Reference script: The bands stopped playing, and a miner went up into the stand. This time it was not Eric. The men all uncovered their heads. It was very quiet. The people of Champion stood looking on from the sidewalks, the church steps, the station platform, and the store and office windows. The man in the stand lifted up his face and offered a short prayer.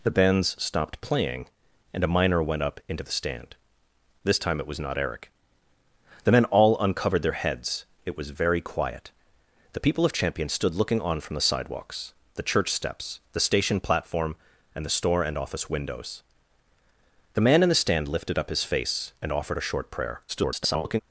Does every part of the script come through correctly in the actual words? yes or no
no